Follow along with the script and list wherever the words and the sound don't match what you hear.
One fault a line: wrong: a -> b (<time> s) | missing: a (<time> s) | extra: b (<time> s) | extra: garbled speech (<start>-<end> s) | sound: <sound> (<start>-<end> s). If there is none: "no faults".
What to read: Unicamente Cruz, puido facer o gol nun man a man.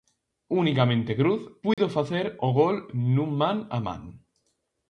sound: dropout (1.7-1.8 s)